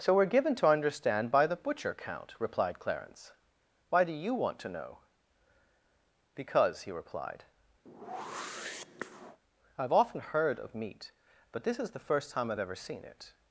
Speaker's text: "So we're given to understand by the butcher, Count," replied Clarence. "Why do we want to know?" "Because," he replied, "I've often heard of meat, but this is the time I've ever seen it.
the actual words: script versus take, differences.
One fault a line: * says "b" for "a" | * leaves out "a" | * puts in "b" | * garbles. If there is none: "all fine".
* says "you" for "we"
* puts in "first"